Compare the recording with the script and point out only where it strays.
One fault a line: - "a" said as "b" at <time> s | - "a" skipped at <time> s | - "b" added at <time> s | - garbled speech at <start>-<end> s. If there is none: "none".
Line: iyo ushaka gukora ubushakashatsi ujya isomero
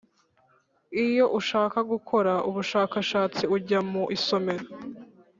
- "mu" added at 3.9 s